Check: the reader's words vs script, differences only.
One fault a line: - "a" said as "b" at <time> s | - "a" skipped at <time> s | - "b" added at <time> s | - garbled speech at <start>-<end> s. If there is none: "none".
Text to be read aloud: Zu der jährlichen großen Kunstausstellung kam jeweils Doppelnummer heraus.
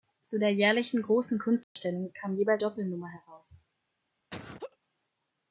none